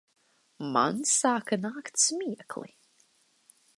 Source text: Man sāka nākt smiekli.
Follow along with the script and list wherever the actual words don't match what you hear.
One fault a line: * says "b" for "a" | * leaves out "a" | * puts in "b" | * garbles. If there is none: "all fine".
all fine